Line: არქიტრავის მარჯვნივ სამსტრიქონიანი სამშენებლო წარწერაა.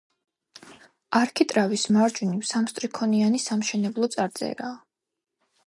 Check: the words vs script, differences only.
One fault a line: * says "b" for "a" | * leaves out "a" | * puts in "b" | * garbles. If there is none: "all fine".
all fine